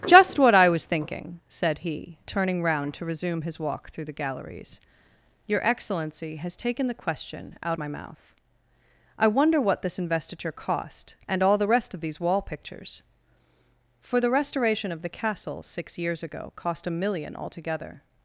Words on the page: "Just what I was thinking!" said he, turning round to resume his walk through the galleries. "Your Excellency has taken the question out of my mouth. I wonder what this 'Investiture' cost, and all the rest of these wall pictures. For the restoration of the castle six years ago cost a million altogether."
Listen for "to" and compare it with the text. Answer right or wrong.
right